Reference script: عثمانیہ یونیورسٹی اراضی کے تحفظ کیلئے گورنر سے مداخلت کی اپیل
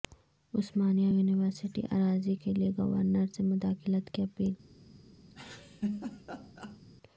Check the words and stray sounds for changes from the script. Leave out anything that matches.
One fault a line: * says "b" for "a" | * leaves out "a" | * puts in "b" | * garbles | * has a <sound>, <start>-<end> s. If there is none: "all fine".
* leaves out "کے تحفظ"
* has a laugh, 5.3-6.8 s